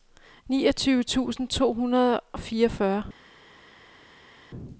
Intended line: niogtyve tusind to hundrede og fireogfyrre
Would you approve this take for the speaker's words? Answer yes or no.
yes